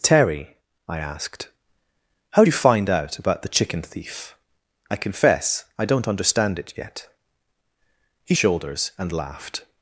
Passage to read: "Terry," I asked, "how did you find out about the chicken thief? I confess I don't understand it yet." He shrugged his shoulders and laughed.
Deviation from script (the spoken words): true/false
true